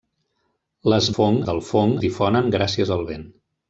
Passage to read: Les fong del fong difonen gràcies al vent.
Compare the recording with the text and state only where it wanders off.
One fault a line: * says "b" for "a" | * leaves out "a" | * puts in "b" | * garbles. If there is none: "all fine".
all fine